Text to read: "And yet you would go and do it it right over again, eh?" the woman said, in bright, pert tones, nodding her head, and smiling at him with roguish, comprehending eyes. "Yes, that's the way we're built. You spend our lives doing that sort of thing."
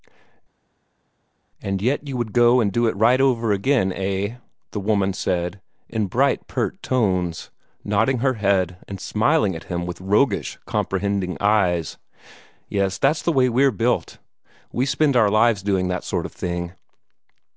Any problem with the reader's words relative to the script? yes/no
yes